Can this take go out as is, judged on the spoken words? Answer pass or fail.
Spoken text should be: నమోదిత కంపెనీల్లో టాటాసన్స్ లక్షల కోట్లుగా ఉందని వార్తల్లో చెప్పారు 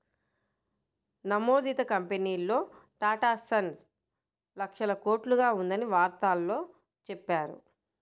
pass